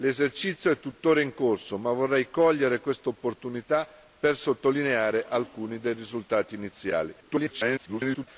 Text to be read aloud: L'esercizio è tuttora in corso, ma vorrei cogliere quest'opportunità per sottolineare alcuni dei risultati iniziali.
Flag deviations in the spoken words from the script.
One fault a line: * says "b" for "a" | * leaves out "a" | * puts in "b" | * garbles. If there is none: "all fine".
* garbles